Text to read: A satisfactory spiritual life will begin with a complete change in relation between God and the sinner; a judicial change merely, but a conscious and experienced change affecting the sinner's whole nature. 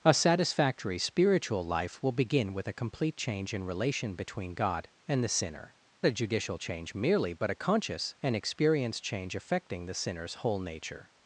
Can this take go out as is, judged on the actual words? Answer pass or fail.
pass